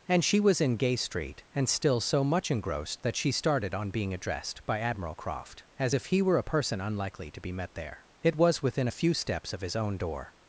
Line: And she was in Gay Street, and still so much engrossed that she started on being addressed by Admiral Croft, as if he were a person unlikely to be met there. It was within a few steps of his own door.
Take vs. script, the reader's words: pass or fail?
pass